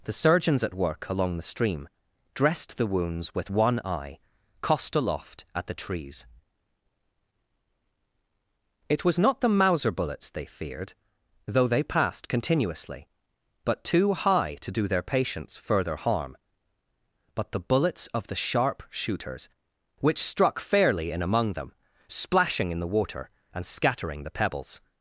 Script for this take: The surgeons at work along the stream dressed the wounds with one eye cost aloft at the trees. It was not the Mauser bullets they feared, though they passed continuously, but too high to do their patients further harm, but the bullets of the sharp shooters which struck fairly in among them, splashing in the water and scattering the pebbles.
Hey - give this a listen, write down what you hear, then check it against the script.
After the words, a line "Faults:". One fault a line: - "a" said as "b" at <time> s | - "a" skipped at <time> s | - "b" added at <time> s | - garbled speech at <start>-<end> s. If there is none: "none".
The surgeons at work along the stream dressed the wounds with one eye cost aloft at the trees. It was not the Mauser bullets they feared, though they passed continuously, but too high to do their patients further harm, but the bullets of the sharp shooters which struck fairly in among them, splashing in the water and scattering the pebbles.
Faults:
none